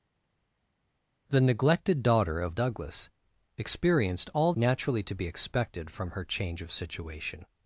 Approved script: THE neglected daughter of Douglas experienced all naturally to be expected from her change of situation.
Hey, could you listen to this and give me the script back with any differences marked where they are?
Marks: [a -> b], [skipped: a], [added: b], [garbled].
THE neglected daughter of Douglas experienced all naturally to be expected from her change of situation.